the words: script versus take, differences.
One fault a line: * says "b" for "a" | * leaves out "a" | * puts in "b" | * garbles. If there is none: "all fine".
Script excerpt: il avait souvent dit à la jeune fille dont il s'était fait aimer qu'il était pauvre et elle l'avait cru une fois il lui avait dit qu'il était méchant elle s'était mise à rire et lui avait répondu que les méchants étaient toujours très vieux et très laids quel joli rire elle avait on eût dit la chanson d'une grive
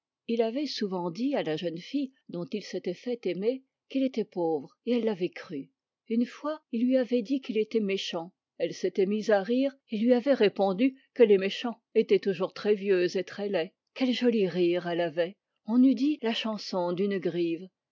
all fine